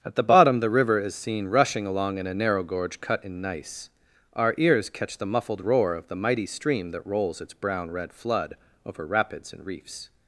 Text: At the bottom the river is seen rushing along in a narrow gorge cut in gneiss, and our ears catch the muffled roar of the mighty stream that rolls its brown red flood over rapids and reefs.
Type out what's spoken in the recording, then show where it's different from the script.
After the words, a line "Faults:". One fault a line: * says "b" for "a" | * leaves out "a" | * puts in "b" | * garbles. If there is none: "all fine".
At the bottom the river is seen rushing along in a narrow gorge cut in gneiss, our ears catch the muffled roar of the mighty stream that rolls its brown red flood over rapids and reefs.
Faults:
* leaves out "and"